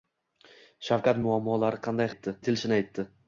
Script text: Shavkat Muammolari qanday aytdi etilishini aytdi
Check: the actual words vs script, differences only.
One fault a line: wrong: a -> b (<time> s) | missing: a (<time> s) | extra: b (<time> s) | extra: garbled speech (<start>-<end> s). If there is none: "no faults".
no faults